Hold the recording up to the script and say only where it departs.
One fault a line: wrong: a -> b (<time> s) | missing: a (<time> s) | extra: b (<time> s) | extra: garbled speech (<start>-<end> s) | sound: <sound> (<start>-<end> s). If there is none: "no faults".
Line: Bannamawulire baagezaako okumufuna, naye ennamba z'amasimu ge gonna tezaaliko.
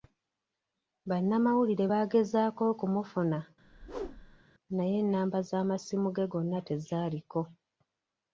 sound: whoosh (3.6-4.4 s)